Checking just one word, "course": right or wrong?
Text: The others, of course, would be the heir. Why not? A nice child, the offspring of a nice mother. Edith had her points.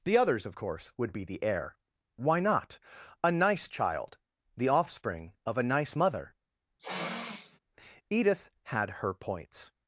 right